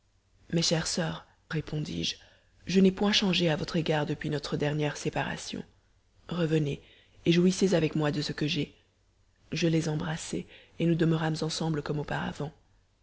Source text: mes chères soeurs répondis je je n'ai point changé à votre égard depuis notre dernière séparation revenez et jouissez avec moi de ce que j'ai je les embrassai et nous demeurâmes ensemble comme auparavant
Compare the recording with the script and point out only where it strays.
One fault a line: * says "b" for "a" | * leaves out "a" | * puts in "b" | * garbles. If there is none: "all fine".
all fine